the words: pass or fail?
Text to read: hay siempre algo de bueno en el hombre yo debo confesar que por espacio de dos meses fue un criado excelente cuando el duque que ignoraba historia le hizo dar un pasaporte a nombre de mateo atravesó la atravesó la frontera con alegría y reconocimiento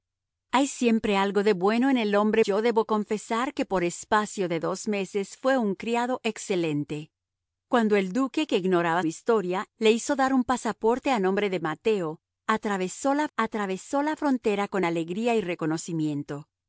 pass